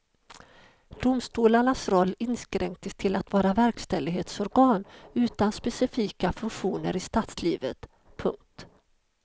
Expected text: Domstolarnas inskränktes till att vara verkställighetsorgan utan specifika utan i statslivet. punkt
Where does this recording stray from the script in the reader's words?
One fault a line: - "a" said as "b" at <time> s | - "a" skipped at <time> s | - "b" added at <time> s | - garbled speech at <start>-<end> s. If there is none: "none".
- "roll" added at 1.9 s
- "utan" said as "funktioner" at 6.3 s